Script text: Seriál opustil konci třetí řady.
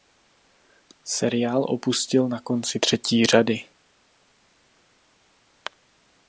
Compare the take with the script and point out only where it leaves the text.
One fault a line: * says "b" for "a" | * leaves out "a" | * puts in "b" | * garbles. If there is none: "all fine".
* puts in "na"